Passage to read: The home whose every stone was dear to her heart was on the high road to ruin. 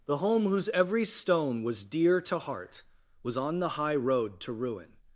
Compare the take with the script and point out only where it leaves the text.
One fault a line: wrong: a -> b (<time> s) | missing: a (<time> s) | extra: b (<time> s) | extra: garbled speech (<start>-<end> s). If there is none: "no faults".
missing: her (2.4 s)